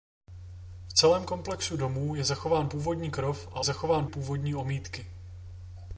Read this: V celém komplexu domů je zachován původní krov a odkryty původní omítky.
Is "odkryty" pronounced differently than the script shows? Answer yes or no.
yes